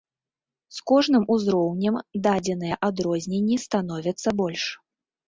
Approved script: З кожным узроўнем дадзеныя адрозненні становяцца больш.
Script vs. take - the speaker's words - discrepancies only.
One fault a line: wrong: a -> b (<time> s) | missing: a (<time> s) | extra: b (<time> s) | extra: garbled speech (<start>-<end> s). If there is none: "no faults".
no faults